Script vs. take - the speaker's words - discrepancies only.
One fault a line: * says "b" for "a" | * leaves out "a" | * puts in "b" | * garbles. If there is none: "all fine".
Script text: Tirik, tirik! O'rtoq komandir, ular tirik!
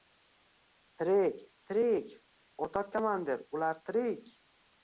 all fine